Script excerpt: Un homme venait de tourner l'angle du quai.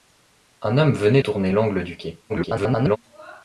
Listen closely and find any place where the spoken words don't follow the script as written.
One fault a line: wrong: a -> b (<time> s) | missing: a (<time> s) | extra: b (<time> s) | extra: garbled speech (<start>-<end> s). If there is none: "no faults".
missing: de (1.2 s)
extra: garbled speech (2.3-3.0 s)